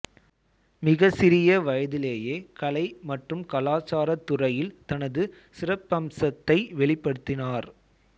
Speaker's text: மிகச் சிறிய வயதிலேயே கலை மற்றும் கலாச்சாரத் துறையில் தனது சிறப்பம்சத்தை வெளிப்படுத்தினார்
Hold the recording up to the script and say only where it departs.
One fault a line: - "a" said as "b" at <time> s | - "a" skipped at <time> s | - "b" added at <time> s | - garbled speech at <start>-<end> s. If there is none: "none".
none